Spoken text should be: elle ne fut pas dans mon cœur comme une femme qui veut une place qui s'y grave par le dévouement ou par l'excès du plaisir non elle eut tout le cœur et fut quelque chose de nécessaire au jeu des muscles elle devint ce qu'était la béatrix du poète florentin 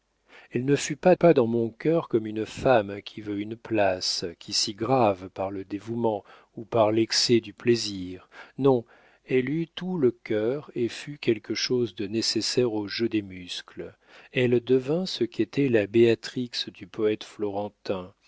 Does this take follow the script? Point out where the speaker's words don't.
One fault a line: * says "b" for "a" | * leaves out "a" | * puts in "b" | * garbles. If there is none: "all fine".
* puts in "pas"